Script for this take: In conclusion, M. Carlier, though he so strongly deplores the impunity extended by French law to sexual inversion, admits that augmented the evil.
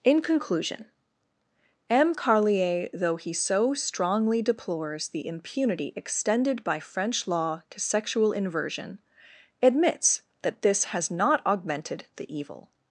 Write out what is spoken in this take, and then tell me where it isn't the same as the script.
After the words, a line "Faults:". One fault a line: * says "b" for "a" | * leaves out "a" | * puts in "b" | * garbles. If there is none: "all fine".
In conclusion, M. Carlier, though he so strongly deplores the impunity extended by French law to sexual inversion, admits that this has not augmented the evil.
Faults:
* puts in "this has not"